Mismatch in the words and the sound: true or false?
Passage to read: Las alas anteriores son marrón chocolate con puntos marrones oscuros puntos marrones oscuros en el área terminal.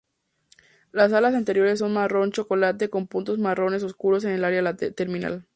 true